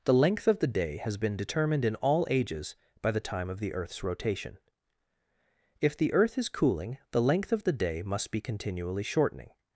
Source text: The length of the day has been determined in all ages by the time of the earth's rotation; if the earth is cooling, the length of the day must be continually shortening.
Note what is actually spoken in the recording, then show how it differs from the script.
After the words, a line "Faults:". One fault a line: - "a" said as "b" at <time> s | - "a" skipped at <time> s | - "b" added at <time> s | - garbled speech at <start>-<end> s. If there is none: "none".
The length of the day has been determined in all ages by the time of the earth's rotation; if the earth is cooling, the length of the day must be continually shortening.
Faults:
none